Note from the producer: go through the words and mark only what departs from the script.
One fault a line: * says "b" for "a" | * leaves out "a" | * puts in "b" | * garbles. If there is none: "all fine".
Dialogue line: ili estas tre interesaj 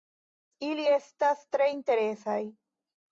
all fine